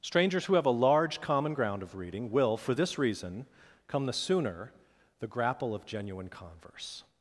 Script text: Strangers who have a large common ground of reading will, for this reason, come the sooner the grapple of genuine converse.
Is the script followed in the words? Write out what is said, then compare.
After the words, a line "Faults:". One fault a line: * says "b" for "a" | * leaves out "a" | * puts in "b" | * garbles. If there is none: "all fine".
Strangers who have a large common ground of reading will, for this reason, come the sooner the grapple of genuine converse.
Faults:
all fine